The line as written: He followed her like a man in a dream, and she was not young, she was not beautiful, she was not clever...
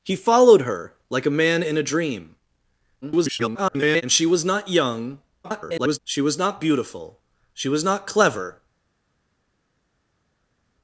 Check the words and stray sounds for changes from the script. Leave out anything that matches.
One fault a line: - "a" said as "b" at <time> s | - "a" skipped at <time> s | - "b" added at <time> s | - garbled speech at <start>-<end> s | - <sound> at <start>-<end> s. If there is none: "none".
- garbled speech at 3.0-4.0 s
- garbled speech at 5.4-6.0 s